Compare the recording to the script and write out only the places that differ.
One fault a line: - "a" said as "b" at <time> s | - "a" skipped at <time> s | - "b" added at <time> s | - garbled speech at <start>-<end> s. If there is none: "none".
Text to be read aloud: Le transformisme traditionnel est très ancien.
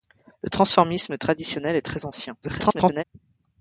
- garbled speech at 2.4-3.0 s